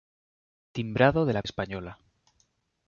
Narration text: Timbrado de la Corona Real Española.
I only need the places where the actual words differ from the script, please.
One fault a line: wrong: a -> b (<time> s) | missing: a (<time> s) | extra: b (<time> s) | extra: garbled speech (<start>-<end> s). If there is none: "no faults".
missing: Corona Real (1.4 s)